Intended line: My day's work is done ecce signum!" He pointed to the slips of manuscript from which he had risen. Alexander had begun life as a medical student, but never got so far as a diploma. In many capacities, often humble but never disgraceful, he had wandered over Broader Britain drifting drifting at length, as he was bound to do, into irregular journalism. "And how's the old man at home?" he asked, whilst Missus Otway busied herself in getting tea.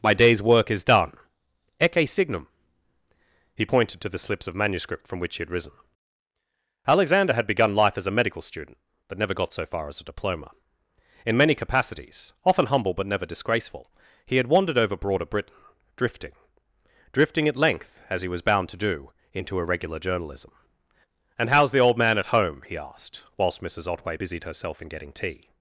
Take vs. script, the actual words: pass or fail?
pass